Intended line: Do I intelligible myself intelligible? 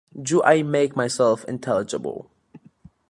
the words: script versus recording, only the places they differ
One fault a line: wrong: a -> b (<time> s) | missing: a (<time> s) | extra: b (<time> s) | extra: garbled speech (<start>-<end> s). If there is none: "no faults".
wrong: intelligible -> make (0.6 s)